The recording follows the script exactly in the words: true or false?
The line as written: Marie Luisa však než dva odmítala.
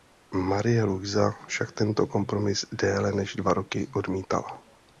false